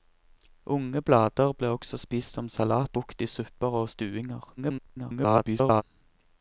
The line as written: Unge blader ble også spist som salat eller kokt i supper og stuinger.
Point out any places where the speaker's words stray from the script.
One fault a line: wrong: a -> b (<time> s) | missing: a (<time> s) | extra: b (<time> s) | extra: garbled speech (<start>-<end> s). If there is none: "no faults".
missing: eller (3.0 s)
extra: garbled speech (4.6-5.8 s)